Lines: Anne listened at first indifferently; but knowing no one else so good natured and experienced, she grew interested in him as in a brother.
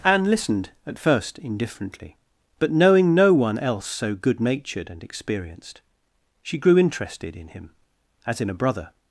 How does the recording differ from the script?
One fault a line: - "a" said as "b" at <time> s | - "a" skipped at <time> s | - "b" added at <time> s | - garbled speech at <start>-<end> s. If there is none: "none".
none